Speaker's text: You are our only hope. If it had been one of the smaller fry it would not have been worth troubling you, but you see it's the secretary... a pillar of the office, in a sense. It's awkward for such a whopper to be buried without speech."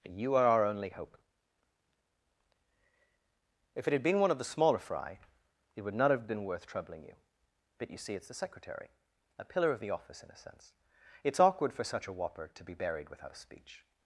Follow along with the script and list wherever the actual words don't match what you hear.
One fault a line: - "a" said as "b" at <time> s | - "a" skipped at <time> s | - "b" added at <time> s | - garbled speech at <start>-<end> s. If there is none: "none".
none